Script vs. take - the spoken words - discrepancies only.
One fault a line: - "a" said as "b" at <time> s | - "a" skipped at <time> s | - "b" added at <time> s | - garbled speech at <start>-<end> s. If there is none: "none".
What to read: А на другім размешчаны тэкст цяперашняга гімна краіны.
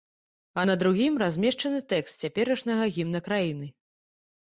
none